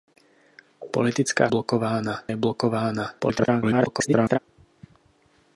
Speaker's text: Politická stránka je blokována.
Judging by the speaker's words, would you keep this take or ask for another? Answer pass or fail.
fail